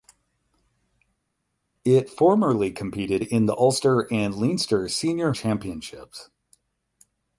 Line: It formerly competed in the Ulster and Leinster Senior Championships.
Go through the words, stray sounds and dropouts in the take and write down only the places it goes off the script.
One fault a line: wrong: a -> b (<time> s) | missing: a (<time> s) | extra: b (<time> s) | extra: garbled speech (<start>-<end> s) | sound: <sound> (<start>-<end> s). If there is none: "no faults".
no faults